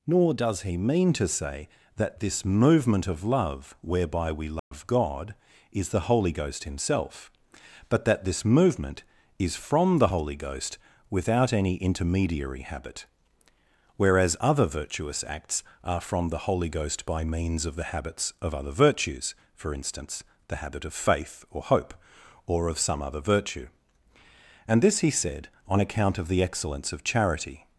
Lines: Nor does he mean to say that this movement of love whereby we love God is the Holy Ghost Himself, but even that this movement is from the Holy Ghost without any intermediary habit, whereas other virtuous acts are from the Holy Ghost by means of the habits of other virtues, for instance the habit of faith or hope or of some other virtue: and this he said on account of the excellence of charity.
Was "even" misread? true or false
true